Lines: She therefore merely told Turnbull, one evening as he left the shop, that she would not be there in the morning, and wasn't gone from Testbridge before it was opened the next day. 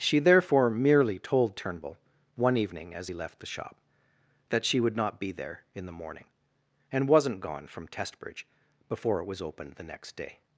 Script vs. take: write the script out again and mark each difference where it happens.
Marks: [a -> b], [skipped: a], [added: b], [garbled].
She therefore merely told Turnbull, one evening as he left the shop, that she would not be there in the morning, and wasn't gone from Testbridge before it was opened the next day.